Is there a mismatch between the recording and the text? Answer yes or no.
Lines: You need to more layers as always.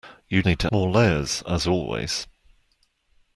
no